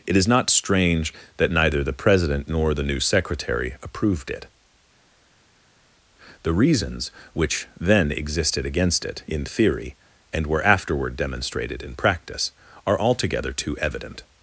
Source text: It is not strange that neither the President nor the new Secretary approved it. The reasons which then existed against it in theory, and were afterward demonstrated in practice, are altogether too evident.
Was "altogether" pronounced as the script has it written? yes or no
yes